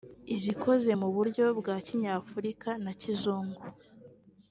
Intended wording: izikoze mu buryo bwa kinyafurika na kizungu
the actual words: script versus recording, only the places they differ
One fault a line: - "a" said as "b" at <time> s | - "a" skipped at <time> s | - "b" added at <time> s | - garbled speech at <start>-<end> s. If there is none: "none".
none